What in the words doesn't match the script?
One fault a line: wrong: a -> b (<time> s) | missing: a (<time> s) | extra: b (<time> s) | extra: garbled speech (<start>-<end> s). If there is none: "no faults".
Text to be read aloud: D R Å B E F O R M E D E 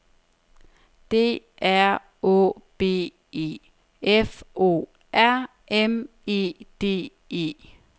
no faults